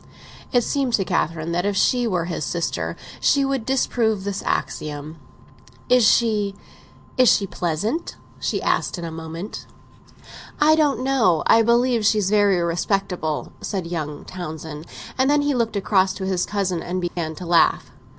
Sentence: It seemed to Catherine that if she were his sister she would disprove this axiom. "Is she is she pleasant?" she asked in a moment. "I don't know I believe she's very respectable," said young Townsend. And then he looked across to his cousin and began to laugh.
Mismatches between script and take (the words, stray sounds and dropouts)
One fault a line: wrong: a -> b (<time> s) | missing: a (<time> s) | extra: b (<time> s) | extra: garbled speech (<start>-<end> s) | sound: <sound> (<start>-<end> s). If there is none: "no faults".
sound: dropout (17.1-17.2 s)